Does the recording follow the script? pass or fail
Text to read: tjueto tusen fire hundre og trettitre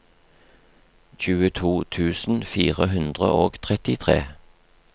pass